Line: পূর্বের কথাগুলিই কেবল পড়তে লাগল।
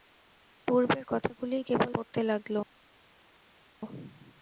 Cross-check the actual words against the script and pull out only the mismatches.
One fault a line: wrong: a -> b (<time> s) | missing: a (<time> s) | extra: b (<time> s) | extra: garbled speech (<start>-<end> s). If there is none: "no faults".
no faults